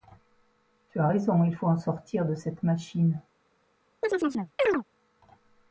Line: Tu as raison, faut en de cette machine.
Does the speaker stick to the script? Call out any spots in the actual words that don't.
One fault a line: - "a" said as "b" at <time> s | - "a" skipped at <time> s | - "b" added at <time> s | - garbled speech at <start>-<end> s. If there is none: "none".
- "il" added at 1.4 s
- "sortir" added at 1.7 s